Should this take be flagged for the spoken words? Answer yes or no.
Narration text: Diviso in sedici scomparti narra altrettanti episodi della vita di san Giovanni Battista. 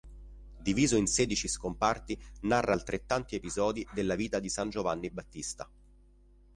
no